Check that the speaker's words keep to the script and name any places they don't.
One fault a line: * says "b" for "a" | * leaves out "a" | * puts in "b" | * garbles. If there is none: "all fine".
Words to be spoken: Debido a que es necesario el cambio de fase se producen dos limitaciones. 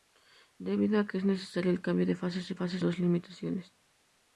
* says "fase" for "producen"